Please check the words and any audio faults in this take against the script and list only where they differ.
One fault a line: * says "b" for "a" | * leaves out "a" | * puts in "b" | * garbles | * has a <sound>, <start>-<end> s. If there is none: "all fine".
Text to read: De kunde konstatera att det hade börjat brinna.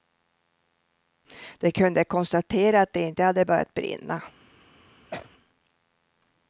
* puts in "inte"
* has a sneeze, 5.1-5.3 s